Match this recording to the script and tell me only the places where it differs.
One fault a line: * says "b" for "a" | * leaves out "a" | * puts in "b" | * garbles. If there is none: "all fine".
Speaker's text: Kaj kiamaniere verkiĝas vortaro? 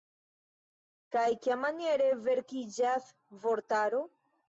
all fine